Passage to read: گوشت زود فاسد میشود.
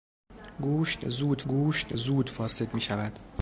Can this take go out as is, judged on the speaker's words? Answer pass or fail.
fail